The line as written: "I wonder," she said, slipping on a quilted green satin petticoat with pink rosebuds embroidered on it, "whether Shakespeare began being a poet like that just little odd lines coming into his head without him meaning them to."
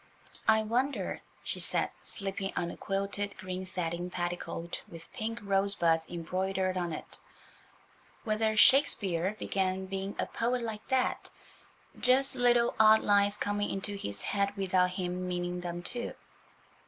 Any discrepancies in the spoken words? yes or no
no